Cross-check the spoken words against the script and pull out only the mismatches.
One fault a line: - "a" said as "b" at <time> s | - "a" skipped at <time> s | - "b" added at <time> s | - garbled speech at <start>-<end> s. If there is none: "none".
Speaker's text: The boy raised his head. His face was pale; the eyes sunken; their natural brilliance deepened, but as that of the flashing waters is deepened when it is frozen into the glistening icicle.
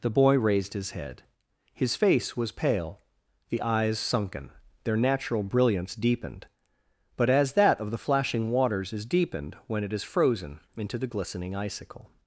none